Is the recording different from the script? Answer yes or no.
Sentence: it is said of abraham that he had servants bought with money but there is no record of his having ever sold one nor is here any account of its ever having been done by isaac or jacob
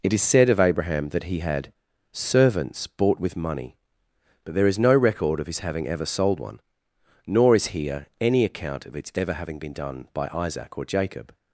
no